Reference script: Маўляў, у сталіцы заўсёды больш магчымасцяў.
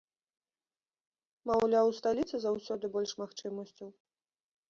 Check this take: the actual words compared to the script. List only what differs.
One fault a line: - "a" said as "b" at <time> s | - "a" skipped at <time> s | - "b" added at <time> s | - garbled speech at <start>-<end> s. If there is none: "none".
none